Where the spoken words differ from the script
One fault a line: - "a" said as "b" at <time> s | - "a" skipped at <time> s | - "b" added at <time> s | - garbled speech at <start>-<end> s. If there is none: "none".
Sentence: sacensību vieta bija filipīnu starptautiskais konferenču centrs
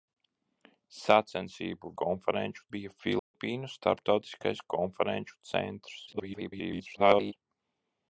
- "vieta" said as "konferenču" at 2.0 s
- garbled speech at 6.1-7.3 s